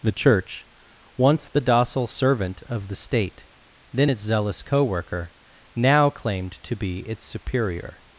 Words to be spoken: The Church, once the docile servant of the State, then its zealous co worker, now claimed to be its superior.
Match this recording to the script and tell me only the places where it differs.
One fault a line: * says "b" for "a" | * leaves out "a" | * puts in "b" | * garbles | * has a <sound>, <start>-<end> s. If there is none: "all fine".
all fine